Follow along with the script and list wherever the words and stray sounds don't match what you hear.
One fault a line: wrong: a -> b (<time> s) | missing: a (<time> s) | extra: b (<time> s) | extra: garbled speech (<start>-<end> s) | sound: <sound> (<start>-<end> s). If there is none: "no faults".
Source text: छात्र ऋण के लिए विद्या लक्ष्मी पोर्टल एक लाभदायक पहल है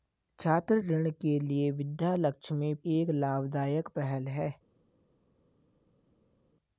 missing: पोर्टल (2.7 s)